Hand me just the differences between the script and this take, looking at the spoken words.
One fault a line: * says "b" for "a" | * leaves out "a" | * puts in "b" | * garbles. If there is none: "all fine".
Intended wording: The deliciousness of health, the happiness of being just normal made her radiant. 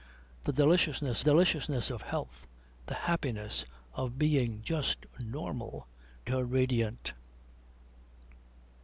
* puts in "deliciousness"
* leaves out "made"